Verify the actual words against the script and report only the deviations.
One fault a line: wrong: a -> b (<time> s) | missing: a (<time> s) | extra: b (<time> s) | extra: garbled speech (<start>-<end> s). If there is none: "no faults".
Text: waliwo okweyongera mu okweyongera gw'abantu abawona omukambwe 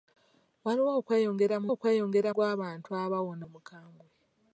no faults